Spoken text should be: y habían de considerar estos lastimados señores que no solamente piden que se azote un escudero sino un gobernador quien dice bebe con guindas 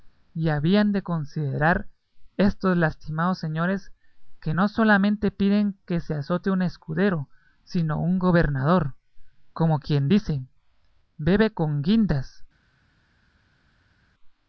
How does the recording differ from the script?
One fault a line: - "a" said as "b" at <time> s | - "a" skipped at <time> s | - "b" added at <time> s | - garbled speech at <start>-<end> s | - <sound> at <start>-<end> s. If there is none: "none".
- "como" added at 9.5 s